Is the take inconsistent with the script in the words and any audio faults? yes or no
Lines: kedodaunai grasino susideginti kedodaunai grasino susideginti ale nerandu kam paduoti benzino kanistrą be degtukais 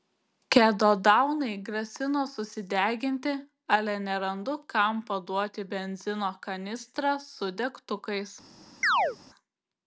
yes